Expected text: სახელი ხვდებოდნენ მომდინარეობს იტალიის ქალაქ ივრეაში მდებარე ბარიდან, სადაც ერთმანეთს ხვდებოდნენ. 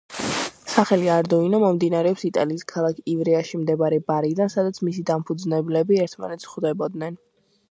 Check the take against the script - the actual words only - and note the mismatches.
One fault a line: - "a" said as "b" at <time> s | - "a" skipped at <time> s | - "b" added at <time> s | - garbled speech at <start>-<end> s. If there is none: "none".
- "ხვდებოდნენ" said as "არდუინო" at 1.1 s
- "მისი დამფუძნებლები" added at 4.9 s